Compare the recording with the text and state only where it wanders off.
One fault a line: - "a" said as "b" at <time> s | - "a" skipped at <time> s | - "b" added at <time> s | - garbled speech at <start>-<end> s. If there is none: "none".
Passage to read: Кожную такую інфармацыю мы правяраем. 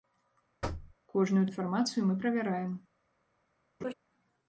- "такую" skipped at 1.5 s